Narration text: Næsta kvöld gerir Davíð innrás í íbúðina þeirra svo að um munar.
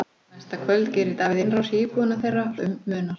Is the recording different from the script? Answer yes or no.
yes